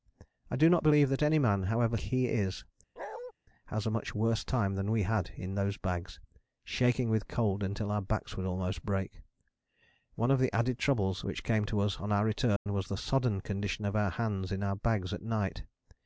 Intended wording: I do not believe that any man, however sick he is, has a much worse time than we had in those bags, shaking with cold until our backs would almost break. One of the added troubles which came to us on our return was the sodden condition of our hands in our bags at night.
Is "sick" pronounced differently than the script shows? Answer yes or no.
yes